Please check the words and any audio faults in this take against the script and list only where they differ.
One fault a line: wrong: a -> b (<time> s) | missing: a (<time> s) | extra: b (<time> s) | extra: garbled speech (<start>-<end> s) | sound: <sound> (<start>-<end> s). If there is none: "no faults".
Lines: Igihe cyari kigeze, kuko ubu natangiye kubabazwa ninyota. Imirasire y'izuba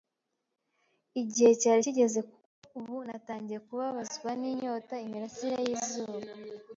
no faults